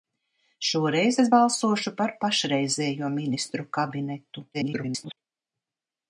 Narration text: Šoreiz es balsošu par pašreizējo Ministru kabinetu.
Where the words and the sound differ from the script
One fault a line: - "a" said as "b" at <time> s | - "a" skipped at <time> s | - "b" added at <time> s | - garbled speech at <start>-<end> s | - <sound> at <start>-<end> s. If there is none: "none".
- garbled speech at 4.5-5.2 s